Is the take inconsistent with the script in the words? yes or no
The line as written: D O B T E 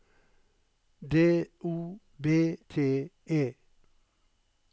no